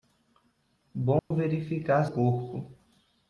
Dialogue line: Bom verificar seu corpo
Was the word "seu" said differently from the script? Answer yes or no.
yes